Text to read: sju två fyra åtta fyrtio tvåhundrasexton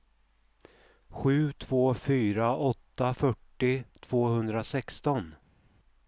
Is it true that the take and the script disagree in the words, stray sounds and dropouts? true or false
false